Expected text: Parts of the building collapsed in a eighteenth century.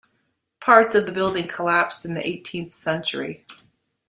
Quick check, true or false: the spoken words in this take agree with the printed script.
false